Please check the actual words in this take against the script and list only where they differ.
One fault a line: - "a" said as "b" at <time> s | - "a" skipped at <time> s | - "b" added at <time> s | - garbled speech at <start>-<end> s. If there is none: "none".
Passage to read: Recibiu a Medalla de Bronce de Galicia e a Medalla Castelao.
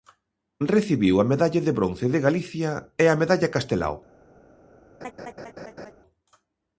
none